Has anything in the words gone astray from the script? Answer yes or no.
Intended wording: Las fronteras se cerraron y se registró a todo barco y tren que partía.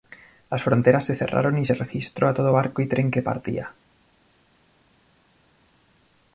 no